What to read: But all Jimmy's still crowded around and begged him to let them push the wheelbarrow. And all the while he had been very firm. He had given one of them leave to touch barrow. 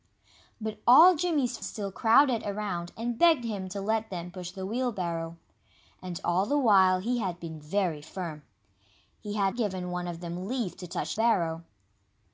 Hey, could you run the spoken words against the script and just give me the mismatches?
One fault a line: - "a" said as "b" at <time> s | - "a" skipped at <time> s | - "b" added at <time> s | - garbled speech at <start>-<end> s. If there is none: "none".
none